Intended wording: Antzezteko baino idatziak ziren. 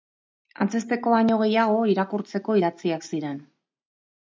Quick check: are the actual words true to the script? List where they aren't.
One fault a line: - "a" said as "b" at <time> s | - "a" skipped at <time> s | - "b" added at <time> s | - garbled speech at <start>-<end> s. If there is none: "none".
- "gehiago irakurtzeko" added at 1.4 s